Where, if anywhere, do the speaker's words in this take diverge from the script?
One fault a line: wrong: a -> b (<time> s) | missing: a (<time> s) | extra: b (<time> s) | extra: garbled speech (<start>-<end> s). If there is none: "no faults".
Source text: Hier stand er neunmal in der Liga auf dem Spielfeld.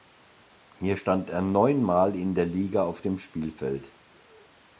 no faults